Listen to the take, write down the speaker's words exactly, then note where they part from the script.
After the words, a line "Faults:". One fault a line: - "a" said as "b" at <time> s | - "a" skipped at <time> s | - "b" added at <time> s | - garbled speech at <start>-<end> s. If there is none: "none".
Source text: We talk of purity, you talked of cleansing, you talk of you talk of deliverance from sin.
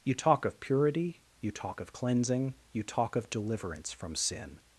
You talk of purity, you talk of cleansing, you talk of deliverance from sin.
Faults:
- "We" said as "You" at 0.0 s
- "talked" said as "talk" at 1.5 s
- "you talk of" skipped at 3.3 s